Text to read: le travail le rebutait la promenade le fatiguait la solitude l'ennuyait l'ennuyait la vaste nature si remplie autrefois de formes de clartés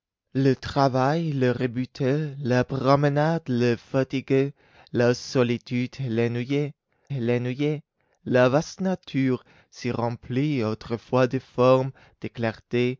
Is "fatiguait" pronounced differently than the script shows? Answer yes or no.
no